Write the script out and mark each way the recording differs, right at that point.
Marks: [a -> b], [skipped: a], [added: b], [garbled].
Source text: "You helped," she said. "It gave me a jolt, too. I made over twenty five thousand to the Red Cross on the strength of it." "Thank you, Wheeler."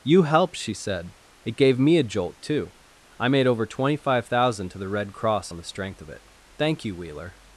"You helped," she said. "It gave me a jolt, too. I made over twenty five thousand to the Red Cross on the strength of it." "Thank you, Wheeler."